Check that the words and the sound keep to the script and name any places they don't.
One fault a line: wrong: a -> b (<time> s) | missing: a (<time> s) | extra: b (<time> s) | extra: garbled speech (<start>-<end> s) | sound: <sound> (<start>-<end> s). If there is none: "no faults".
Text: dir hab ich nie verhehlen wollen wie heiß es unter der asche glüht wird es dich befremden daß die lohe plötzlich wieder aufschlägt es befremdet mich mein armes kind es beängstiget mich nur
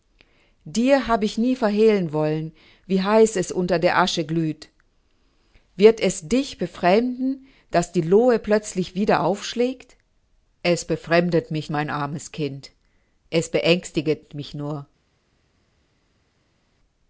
no faults